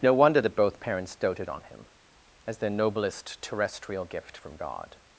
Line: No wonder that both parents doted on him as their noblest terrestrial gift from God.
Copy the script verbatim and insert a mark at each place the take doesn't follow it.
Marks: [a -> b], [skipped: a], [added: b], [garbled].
No wonder that both parents doted on him as their noblest terrestrial gift from God.